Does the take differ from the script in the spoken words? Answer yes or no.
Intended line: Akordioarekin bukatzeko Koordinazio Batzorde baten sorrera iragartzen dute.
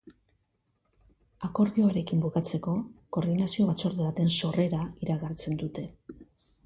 no